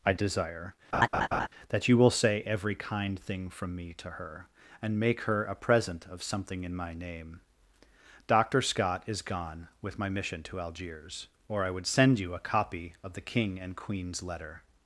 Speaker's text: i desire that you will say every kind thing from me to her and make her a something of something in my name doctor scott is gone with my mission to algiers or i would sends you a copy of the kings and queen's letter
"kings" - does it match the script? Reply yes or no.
no